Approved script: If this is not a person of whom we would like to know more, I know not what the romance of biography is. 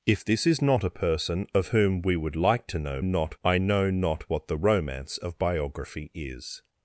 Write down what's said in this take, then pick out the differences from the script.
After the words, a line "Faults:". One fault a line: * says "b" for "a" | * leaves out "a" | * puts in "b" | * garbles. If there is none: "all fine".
If this is not a person of whom we would like to know not, I know not what the romance of biography is.
Faults:
* says "not" for "more"